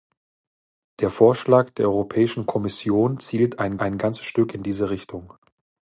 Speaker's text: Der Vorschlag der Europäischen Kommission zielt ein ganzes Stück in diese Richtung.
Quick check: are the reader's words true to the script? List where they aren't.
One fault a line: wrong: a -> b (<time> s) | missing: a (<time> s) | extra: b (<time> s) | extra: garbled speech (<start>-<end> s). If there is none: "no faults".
extra: ein (3.8 s)